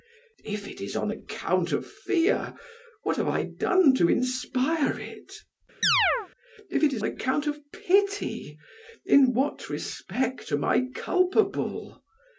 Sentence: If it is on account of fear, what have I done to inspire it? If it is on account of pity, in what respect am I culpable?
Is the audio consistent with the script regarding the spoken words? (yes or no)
no